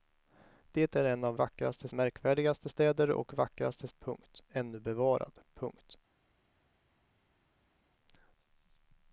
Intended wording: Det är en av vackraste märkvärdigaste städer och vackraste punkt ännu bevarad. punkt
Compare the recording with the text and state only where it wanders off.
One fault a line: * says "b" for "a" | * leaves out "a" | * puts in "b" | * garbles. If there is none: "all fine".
all fine